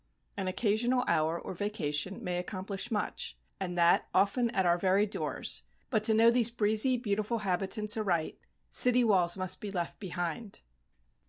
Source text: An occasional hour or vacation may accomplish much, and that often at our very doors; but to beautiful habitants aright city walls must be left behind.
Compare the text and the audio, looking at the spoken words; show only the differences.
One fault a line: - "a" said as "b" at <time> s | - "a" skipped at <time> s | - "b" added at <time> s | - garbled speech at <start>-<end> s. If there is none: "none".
- "know these breezy" added at 6.1 s